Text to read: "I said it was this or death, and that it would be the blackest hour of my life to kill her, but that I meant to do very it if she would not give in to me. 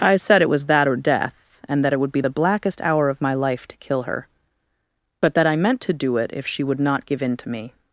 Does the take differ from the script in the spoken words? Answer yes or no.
yes